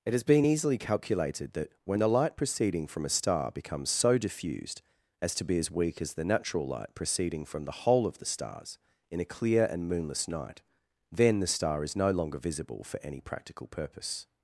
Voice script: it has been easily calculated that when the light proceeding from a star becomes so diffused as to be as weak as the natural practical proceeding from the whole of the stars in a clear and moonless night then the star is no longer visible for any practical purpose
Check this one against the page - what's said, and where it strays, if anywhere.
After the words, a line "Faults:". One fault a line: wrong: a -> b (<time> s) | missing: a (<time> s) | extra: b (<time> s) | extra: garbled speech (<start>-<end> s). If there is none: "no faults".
it has been easily calculated that when the light proceeding from a star becomes so diffused as to be as weak as the natural light proceeding from the whole of the stars in a clear and moonless night then the star is no longer visible for any practical purpose
Faults:
wrong: practical -> light (6.7 s)